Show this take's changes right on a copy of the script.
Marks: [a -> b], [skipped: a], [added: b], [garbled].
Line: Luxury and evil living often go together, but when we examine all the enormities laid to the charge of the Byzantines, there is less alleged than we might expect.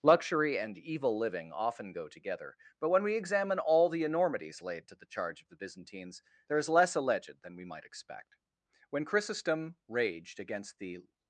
Luxury and evil living often go together, but when we examine all the enormities laid to the charge of the Byzantines, there is less alleged than we might expect. [added: When Chrysostom raged against the]